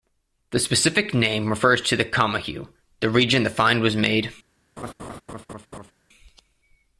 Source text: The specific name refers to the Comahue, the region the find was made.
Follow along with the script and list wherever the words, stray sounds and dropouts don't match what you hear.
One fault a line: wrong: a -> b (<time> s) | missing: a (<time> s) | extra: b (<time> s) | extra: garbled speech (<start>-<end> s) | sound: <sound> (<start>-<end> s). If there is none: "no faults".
sound: laugh (4.8-5.9 s)